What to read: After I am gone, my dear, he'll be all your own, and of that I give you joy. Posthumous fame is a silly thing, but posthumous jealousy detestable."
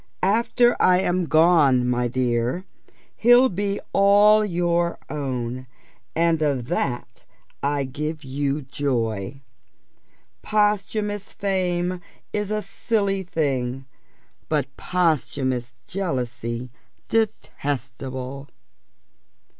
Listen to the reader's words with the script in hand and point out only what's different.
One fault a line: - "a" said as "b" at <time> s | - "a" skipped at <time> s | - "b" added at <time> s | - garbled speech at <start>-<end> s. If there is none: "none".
none